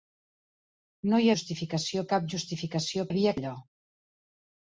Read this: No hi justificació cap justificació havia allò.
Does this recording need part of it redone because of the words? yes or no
no